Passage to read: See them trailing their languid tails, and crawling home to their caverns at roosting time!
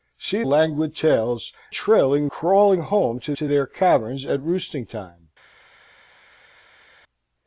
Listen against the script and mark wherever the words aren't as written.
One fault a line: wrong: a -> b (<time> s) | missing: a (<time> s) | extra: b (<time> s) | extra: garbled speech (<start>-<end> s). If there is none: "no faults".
missing: them trailing their (0.4 s)
wrong: and -> trailing (1.7 s)
extra: to (3.3 s)